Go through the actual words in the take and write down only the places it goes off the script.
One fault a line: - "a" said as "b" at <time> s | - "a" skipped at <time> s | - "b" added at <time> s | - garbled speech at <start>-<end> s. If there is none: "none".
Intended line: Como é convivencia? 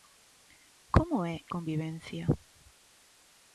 none